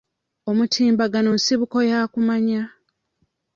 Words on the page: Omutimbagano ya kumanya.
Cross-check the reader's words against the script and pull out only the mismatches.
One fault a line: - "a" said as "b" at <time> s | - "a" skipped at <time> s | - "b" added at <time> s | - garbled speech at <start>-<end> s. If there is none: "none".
- "nsibuko" added at 1.4 s